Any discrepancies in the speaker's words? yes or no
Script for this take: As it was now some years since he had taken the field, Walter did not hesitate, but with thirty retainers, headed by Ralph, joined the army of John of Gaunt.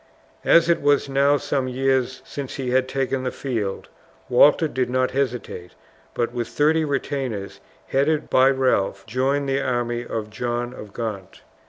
no